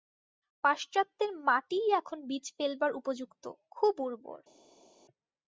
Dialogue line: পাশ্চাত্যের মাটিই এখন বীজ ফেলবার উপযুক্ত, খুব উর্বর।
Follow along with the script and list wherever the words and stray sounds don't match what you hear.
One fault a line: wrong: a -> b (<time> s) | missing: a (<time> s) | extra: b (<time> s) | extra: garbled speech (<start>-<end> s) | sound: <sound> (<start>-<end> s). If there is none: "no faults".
no faults